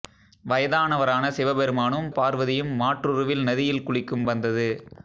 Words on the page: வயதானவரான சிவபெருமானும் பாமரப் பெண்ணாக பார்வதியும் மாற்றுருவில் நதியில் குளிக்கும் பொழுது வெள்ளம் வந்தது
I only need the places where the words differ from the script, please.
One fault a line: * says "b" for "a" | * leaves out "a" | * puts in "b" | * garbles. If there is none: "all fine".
* leaves out "பாமரப் பெண்ணாக"
* leaves out "பொழுது வெள்ளம்"